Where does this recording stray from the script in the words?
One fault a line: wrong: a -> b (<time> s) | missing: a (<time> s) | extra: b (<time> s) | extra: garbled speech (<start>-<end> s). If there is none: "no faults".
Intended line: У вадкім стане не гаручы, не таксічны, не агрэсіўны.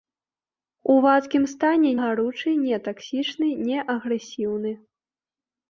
missing: не (1.9 s)